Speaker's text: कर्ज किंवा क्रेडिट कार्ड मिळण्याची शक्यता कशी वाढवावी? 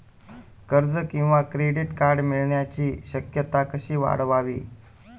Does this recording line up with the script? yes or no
yes